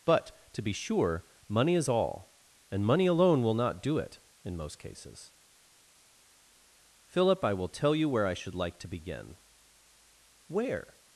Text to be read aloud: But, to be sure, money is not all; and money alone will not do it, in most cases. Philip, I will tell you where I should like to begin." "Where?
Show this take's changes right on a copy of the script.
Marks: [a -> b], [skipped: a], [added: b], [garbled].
But, to be sure, money is [skipped: not] all; and money alone will not do it, in most cases. Philip, I will tell you where I should like to begin." "Where?